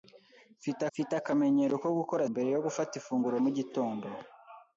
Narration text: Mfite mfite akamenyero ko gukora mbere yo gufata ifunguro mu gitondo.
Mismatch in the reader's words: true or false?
false